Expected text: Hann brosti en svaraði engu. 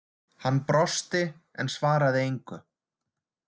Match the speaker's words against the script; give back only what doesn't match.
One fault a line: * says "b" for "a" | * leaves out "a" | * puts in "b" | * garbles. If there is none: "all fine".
all fine